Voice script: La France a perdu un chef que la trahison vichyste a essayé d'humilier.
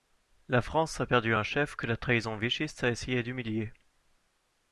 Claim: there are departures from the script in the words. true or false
false